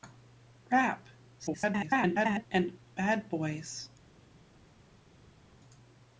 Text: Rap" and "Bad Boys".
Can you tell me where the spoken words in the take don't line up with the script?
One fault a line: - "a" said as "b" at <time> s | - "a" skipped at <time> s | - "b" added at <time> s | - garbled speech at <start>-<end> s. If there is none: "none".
- garbled speech at 1.4-2.5 s